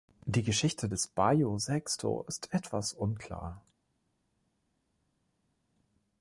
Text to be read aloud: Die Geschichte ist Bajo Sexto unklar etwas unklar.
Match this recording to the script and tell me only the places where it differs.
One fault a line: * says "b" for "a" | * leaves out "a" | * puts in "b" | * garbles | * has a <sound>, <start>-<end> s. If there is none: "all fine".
* says "des" for "ist"
* says "ist" for "unklar"